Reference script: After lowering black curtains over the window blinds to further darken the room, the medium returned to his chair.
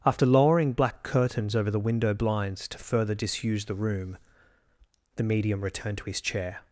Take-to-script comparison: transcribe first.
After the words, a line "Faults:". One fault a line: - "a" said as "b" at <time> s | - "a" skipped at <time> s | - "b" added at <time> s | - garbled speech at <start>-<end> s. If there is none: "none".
After lowering black curtains over the window blinds to further disuse the room, the medium returned to his chair.
Faults:
- "darken" said as "disuse" at 3.1 s